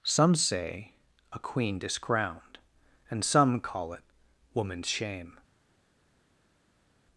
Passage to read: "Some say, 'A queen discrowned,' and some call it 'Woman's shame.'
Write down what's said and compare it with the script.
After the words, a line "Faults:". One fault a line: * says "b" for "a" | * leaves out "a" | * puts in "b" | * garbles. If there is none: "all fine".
"Some say, 'A queen discrowned,' and some call it 'Woman's shame.'
Faults:
all fine